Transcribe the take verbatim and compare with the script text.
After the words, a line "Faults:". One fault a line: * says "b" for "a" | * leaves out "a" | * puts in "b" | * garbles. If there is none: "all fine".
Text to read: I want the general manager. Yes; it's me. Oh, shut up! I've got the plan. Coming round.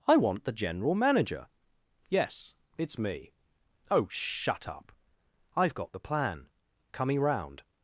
I want the general manager. Yes; it's me. Oh, shut up! I've got the plan. Coming round.
Faults:
all fine